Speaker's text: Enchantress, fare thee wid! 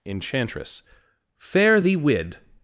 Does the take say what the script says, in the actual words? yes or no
yes